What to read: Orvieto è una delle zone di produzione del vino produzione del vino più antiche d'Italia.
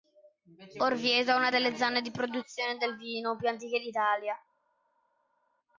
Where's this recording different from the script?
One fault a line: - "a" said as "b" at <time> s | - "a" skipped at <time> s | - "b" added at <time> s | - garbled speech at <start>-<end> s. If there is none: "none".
- "produzione del vino" skipped at 3.3 s